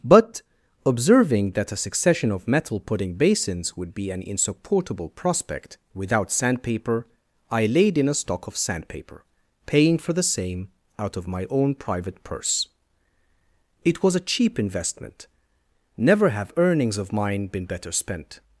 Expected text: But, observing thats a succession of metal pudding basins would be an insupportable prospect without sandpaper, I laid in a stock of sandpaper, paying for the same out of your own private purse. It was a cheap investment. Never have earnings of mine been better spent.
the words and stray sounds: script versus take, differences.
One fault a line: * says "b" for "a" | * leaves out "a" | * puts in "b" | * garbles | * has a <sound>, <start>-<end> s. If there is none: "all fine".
* says "that" for "thats"
* says "my" for "your"